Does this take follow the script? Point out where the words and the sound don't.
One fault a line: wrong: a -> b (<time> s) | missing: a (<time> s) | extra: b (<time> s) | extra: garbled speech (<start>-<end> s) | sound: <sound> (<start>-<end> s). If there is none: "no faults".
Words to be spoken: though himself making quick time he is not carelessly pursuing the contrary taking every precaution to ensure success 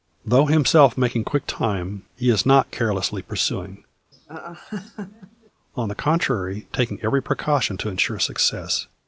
sound: laugh (4.1-5.5 s)
extra: on (5.8 s)